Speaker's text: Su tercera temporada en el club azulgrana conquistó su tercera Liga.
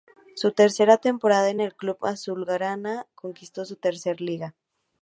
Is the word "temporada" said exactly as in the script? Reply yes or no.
yes